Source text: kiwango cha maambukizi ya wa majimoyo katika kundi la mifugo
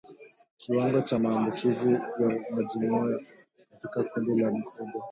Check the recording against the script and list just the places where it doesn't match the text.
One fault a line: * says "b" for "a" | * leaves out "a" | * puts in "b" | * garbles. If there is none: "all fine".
all fine